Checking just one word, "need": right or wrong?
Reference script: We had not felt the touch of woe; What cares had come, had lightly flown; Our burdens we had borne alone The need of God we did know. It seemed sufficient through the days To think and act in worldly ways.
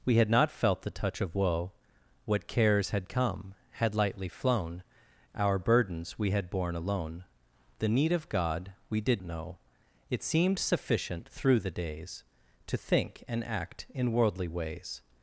right